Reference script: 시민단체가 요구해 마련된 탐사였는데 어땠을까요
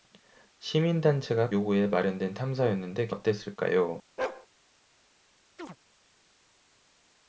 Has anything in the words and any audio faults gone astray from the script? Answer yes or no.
yes